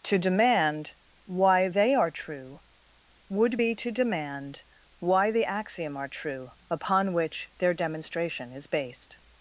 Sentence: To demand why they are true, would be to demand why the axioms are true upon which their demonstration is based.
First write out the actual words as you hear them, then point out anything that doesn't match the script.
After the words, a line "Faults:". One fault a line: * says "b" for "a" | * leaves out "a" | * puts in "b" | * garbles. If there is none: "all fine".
To demand why they are true, would be to demand why the axiom are true upon which their demonstration is based.
Faults:
* says "axiom" for "axioms"